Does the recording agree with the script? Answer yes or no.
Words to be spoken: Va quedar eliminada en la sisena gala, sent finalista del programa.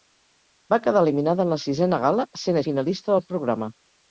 yes